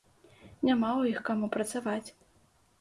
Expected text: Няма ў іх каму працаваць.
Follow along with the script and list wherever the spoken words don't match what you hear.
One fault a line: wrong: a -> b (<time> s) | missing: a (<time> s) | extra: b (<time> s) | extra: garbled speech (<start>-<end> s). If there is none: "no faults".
no faults